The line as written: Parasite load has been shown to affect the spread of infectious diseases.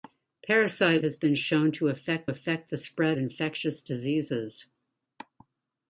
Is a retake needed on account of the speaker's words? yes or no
yes